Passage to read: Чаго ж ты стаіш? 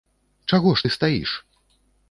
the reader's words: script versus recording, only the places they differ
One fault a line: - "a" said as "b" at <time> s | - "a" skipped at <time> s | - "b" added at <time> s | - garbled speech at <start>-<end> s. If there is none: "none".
none